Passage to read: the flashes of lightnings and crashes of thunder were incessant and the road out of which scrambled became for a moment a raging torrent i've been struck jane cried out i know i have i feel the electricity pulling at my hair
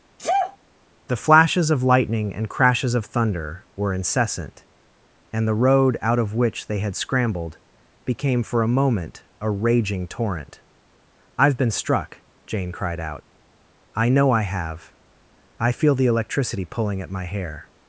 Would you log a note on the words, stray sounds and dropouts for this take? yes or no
yes